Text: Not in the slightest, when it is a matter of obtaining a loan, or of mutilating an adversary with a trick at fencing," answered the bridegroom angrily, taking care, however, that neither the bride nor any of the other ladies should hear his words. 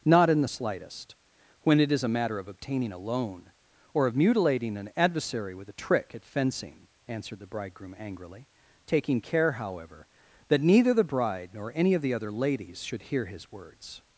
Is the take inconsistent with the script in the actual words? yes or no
no